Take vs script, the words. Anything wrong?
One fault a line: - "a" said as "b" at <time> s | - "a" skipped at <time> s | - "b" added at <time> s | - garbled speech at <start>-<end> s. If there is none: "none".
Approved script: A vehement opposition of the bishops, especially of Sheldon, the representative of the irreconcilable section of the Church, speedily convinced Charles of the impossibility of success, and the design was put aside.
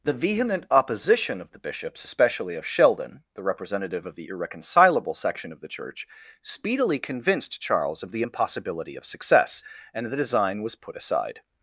- "A" said as "The" at 0.0 s